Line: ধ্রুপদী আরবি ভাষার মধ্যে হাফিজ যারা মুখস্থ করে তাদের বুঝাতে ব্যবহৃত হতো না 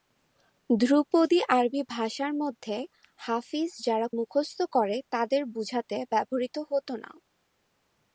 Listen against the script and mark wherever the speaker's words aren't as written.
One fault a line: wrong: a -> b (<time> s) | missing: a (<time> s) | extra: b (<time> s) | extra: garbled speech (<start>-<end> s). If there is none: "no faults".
no faults